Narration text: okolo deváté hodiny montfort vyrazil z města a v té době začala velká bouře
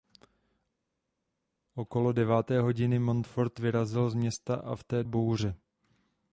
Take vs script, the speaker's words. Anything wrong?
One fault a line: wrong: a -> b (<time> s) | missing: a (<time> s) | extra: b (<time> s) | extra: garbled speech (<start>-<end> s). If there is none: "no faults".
missing: době začala velká (5.0 s)